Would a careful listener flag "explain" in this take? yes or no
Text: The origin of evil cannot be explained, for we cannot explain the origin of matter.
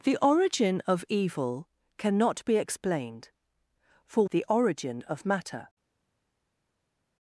yes